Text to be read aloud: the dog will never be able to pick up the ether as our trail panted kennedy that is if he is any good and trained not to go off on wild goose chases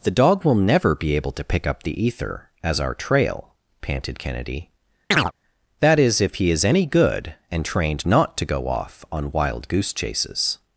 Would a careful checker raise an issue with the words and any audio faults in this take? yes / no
yes